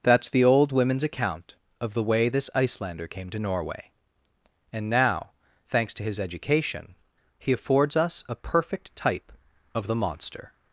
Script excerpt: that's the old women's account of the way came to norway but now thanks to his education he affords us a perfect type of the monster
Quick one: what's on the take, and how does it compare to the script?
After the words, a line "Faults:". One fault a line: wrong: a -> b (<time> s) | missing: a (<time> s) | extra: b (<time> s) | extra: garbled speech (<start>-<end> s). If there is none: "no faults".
that's the old women's account of the way this icelander came to norway and now thanks to his education he affords us a perfect type of the monster
Faults:
extra: this icelander (2.3 s)
wrong: but -> and (4.7 s)